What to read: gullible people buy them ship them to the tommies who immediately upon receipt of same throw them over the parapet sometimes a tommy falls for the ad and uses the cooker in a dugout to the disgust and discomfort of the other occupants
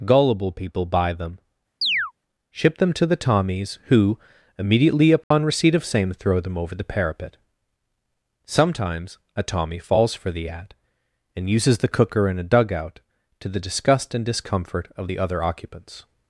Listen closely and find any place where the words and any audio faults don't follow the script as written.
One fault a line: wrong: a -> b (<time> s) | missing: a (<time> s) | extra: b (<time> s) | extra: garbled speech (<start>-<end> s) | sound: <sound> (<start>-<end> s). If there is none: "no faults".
sound: chirp (1.8-2.1 s)
sound: dropout (5.2-5.3 s)